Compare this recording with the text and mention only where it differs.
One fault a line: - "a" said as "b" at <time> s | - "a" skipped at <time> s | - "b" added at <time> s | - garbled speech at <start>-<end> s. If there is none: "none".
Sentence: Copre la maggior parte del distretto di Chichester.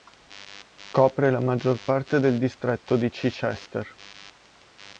none